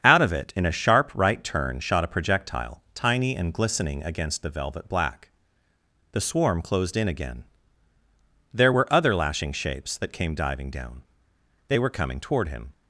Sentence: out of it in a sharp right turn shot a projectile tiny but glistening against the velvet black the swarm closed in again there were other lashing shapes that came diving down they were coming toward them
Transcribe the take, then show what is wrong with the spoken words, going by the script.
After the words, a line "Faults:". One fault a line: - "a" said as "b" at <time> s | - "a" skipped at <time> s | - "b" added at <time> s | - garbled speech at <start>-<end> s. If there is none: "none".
out of it in a sharp right turn shot a projectile tiny and glistening against the velvet black the swarm closed in again there were other lashing shapes that came diving down they were coming toward him
Faults:
- "but" said as "and" at 3.3 s
- "them" said as "him" at 12.5 s